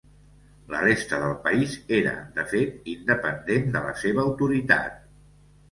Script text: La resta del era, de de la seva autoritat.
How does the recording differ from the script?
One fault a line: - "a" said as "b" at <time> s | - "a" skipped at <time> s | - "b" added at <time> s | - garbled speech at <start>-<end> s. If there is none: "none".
- "país" added at 1.5 s
- "fet independent" added at 2.5 s